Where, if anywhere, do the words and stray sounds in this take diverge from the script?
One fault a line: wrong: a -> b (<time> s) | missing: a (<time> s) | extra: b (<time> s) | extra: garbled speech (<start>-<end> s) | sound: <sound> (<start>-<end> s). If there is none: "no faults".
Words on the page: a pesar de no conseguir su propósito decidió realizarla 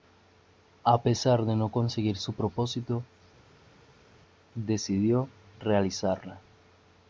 no faults